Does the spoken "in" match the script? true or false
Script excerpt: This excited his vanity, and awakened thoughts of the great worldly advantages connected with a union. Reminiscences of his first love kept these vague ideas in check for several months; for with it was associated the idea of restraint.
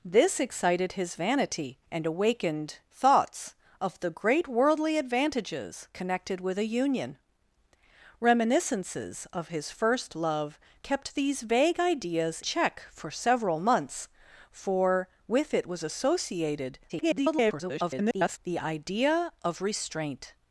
false